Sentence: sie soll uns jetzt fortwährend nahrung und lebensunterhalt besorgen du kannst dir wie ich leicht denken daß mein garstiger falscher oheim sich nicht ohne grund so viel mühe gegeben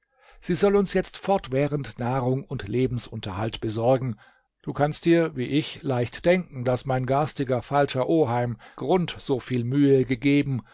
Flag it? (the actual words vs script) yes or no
yes